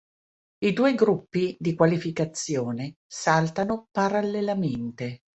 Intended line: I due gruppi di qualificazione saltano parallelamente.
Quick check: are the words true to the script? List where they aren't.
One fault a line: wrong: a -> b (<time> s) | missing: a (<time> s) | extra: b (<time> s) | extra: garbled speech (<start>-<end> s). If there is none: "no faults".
no faults